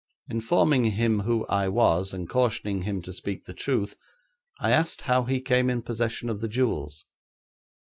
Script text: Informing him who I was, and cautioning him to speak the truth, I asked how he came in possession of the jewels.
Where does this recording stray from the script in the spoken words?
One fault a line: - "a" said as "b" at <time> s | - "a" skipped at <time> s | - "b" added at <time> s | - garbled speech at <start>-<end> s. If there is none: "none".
none